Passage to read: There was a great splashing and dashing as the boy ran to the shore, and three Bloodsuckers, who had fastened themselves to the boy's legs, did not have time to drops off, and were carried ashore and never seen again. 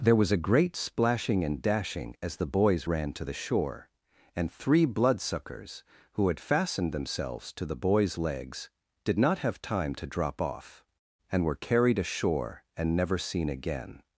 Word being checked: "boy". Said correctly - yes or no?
no